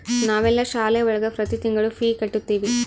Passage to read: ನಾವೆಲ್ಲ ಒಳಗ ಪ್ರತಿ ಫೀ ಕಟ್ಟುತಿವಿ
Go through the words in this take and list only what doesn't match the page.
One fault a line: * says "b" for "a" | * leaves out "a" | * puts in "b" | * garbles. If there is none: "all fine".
* puts in "ಶಾಲೆ"
* puts in "ತಿಂಗಳು"